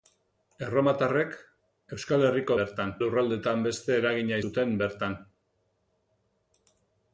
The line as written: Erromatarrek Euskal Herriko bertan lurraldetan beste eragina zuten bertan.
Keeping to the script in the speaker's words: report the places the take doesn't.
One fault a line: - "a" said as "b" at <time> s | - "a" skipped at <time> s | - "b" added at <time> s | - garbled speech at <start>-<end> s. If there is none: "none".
none